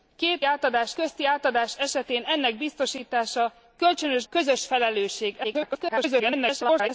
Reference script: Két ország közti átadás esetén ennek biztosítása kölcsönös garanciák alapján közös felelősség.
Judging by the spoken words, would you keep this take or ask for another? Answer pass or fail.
fail